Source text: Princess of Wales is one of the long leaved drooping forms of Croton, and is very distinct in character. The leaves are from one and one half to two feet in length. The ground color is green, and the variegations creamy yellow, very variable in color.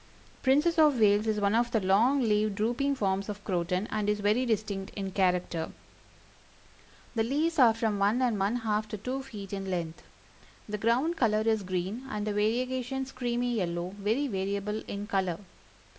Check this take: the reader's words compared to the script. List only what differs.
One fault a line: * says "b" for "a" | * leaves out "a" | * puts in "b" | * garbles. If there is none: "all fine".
all fine